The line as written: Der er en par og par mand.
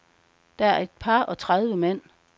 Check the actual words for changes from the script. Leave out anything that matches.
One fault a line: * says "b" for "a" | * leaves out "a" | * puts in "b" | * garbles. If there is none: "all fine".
* says "et" for "en"
* says "tredive" for "par"